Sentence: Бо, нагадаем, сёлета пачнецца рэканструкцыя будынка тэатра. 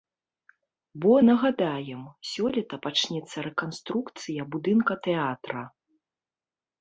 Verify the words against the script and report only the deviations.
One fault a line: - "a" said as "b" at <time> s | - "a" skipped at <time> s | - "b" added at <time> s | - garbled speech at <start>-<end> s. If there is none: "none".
none